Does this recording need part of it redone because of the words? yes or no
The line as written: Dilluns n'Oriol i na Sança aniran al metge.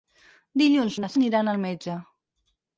yes